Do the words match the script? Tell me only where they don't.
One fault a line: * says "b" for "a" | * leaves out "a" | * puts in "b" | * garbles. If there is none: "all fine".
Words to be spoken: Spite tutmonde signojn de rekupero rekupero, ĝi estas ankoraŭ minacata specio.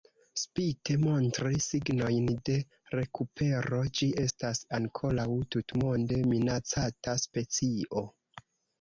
* says "montri" for "tutmonde"
* leaves out "rekupero"
* puts in "tutmonde"